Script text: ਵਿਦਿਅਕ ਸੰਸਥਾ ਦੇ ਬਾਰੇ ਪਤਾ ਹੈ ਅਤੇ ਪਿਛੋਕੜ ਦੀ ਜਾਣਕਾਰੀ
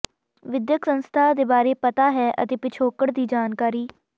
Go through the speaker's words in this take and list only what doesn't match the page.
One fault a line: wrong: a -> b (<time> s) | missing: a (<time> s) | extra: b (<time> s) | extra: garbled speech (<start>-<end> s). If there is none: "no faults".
no faults